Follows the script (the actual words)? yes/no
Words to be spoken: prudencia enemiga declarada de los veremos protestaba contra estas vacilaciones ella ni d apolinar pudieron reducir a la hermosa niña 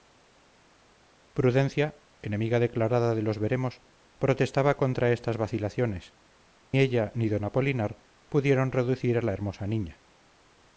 yes